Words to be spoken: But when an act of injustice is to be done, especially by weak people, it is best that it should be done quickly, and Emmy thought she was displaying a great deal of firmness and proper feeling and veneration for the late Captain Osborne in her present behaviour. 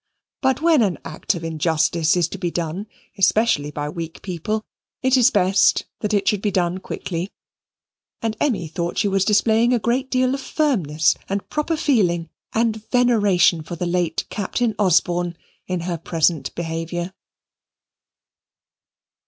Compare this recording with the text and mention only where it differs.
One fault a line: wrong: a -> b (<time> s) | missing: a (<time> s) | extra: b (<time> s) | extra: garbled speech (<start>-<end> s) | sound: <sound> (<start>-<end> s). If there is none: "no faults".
no faults